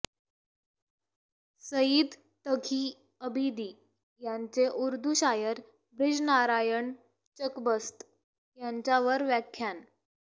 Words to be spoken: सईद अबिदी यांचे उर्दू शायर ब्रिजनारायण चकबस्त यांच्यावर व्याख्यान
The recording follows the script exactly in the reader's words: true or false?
false